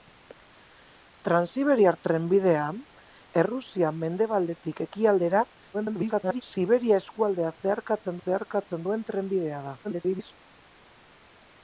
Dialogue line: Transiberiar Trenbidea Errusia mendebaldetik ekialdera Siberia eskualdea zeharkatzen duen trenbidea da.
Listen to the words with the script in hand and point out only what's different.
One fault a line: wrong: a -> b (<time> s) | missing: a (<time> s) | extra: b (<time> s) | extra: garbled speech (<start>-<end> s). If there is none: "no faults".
extra: garbled speech (5.7-6.4 s)
extra: zeharkatzen (8.2 s)
extra: garbled speech (9.8-10.3 s)